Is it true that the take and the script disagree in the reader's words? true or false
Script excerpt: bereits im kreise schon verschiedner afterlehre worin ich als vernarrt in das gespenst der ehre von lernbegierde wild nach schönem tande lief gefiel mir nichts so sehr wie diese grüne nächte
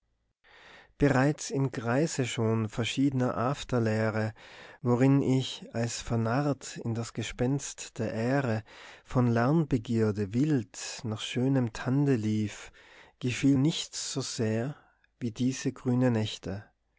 true